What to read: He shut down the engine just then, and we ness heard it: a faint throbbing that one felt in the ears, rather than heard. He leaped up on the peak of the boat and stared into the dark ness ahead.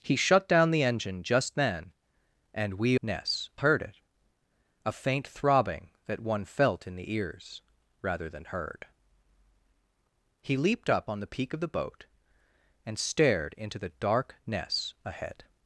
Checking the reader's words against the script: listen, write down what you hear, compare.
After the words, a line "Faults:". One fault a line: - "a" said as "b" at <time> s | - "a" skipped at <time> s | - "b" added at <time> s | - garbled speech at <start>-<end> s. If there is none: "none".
He shut down the engine just then, and we ness heard it: a faint throbbing that one felt in the ears, rather than heard. He leaped up on the peak of the boat and stared into the dark ness ahead.
Faults:
none